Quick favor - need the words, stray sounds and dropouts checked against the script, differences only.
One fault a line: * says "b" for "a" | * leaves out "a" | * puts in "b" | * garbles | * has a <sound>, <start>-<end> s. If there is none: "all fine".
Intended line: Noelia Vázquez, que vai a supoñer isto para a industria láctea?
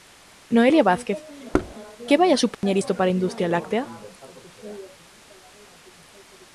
* has a thud, 1.5-1.7 s
* has a dropout, 2.5-2.6 s